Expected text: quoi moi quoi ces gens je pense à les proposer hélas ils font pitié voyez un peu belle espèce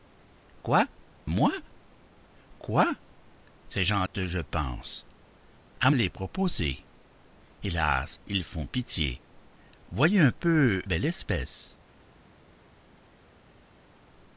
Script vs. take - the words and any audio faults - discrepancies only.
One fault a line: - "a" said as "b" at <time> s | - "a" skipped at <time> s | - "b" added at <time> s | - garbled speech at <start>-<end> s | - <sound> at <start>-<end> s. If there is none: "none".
none